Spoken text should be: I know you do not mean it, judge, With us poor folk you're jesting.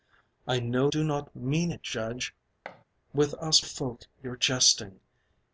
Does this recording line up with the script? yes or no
no